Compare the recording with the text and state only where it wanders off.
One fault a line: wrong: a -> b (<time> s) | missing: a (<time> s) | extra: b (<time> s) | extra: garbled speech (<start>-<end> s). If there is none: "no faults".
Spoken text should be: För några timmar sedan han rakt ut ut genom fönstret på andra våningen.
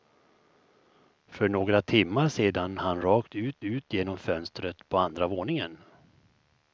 no faults